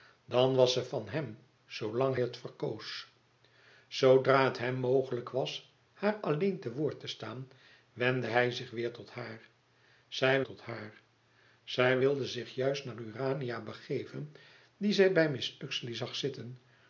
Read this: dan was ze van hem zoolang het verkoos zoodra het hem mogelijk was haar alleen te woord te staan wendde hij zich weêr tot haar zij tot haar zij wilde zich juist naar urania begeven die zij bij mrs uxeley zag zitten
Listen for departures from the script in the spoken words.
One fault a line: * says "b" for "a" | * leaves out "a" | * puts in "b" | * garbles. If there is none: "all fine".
all fine